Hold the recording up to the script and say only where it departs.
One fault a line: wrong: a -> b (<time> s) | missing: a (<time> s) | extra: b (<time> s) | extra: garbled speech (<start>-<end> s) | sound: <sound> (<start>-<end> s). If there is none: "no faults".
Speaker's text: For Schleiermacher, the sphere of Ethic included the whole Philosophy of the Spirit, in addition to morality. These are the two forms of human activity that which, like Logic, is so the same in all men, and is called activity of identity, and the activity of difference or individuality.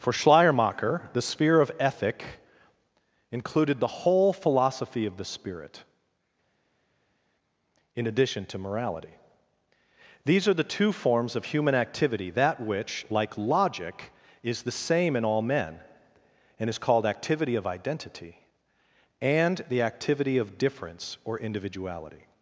missing: so (14.6 s)